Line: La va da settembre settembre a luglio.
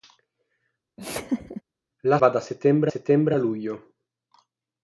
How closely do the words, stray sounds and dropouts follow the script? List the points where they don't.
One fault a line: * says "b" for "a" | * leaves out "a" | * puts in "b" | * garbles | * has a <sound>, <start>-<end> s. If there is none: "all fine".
* has a laugh, 1.0-1.6 s